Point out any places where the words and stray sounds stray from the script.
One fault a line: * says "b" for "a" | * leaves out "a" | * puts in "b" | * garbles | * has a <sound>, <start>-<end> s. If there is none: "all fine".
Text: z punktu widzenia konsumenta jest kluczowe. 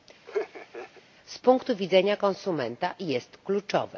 * has a laugh, 0.3-1.0 s